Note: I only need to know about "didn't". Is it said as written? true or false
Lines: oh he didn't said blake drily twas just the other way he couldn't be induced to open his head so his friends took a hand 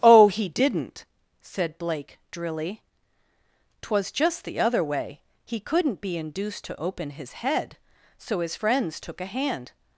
true